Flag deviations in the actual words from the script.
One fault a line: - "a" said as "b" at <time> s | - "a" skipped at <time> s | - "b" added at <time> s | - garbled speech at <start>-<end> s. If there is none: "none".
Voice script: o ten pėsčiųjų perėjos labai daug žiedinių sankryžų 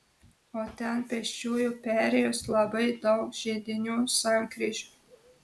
none